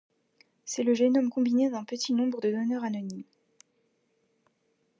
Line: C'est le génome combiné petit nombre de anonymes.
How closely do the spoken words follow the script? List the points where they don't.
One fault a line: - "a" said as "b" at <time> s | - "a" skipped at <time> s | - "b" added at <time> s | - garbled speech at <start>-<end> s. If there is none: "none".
- "d'un" added at 1.7 s
- "donneurs" added at 2.5 s